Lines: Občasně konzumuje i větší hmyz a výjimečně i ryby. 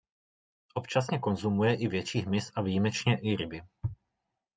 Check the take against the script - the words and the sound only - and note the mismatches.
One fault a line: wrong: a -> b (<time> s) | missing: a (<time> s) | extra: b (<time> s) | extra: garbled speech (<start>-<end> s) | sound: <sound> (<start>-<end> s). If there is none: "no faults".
no faults